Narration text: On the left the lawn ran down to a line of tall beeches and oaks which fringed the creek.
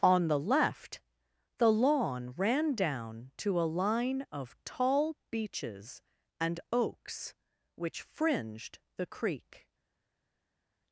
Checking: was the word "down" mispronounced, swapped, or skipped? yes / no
no